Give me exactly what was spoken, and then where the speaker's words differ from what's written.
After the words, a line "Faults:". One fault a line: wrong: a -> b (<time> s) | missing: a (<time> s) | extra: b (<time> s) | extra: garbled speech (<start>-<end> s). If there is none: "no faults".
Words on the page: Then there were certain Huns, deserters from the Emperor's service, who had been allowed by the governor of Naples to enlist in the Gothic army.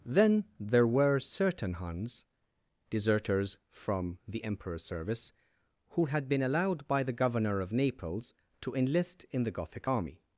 Then there were certain Huns, deserters from the Emperor's service, who had been allowed by the governor of Naples to enlist in the Gothic army.
Faults:
no faults